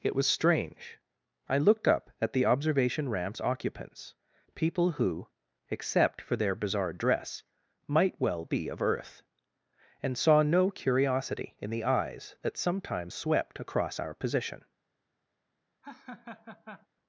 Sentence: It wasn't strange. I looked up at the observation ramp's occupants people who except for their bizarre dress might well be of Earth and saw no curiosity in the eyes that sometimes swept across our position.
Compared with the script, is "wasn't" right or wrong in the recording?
wrong